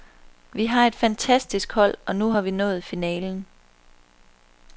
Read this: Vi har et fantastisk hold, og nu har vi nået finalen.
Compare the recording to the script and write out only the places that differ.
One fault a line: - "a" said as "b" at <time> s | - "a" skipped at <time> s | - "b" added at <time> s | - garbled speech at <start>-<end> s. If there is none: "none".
none